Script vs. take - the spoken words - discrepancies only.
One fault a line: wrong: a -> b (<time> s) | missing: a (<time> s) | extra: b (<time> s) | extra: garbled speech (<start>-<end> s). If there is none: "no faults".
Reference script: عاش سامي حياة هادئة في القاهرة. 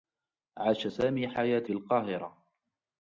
missing: هادئة (1.6 s)